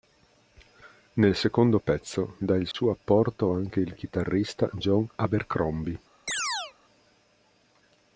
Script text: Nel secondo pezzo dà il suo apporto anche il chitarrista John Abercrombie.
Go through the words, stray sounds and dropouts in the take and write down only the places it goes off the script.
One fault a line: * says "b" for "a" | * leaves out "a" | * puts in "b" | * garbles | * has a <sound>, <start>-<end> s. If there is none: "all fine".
* has a dropout, 2.7-2.7 s
* has a chirp, 6.3-6.7 s